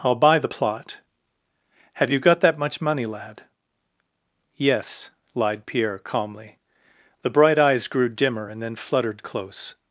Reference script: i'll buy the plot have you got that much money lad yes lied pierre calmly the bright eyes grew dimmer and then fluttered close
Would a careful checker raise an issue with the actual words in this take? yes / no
no